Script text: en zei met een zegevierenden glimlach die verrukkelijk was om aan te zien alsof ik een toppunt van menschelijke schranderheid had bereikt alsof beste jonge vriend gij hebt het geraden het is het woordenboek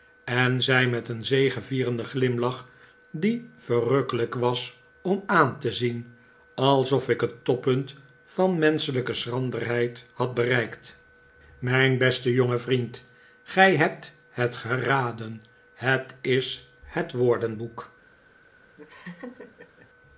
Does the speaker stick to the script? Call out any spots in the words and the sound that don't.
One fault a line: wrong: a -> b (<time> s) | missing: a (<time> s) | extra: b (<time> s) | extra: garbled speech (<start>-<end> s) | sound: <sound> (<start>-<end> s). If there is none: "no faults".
wrong: een -> het (7.2 s)
wrong: alsof -> mijn (11.6 s)
sound: laugh (18.8-19.9 s)